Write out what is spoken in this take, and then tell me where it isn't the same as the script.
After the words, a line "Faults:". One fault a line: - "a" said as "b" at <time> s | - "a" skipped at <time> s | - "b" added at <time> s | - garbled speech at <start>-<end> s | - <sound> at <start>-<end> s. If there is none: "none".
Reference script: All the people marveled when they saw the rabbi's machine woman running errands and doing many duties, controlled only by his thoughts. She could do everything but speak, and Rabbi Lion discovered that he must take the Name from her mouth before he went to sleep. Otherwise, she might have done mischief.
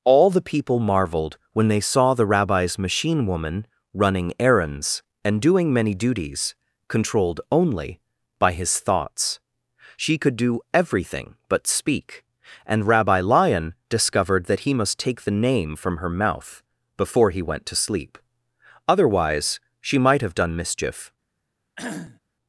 All the people marveled when they saw the rabbi's machine woman running errands and doing many duties, controlled only by his thoughts. She could do everything but speak, and Rabbi Lion discovered that he must take the Name from her mouth before he went to sleep. Otherwise, she might have done mischief.
Faults:
- cough at 21.8-22.2 s